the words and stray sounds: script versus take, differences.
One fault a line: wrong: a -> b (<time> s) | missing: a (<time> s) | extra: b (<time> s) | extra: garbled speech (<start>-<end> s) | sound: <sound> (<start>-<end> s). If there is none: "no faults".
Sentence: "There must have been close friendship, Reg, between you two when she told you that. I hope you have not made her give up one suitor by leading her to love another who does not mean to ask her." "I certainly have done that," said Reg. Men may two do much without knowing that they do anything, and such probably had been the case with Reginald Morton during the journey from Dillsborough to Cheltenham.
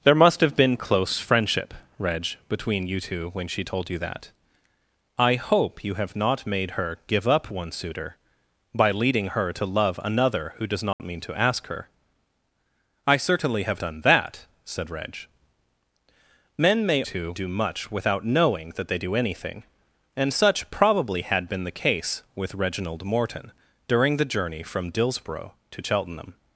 sound: dropout (10.9-11.0 s)